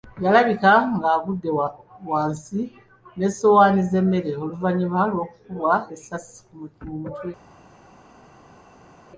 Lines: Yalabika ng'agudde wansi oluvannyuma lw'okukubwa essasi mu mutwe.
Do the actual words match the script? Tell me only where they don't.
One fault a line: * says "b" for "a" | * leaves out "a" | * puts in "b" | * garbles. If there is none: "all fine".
* puts in "n'essowaani z'emmere"